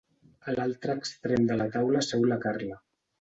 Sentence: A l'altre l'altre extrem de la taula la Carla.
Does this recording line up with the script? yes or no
no